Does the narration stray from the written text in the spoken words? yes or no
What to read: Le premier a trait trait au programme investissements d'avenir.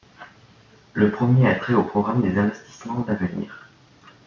yes